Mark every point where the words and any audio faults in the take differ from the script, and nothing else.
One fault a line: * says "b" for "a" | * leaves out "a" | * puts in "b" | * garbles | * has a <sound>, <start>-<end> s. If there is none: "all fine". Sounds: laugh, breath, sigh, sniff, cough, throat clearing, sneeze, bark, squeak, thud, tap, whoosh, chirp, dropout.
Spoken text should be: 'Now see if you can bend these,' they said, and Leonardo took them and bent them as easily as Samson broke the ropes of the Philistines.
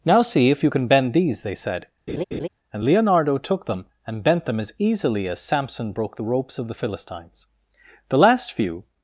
* has a laugh, 2.1-2.5 s
* puts in "The last few"